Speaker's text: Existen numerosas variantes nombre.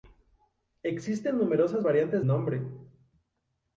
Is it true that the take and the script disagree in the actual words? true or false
false